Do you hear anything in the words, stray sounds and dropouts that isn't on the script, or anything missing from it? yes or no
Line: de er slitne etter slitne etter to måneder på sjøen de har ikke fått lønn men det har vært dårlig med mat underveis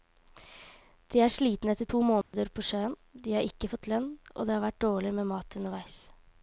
yes